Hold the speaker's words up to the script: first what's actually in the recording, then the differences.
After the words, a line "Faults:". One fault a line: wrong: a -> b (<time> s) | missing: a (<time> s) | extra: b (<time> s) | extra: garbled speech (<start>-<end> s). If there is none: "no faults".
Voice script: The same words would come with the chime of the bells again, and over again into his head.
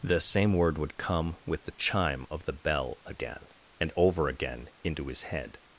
The same word would come with the chime of the bell again, and over again into his head.
Faults:
wrong: words -> word (0.5 s)
wrong: bells -> bell (2.5 s)